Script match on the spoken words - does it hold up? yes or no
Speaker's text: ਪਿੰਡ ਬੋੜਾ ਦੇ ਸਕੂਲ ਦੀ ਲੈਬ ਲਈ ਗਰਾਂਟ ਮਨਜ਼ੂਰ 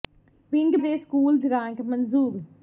no